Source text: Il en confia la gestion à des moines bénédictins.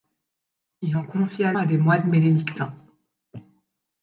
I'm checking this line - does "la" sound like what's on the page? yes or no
no